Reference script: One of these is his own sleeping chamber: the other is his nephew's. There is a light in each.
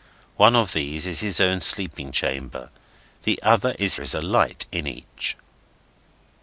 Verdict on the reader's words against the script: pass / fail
fail